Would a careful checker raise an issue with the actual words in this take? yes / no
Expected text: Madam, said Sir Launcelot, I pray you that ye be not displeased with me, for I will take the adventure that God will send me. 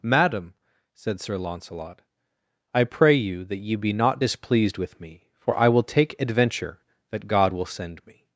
yes